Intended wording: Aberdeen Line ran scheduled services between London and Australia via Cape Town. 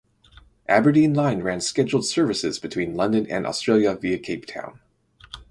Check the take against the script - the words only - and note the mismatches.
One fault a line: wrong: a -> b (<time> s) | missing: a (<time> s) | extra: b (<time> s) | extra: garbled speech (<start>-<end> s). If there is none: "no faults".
no faults